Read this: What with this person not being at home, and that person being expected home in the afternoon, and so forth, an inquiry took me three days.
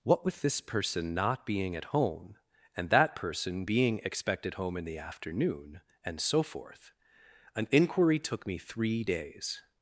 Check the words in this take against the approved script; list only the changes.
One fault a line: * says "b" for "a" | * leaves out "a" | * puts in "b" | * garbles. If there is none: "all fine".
all fine